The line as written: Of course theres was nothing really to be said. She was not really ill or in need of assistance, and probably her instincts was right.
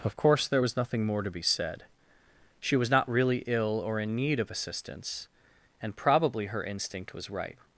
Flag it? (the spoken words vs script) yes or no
yes